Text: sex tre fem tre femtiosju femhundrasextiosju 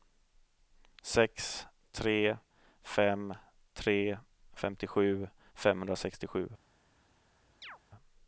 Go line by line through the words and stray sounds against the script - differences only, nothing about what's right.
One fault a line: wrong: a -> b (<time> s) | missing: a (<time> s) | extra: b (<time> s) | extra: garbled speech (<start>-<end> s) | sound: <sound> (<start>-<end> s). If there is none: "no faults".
sound: chirp (7.6-7.8 s)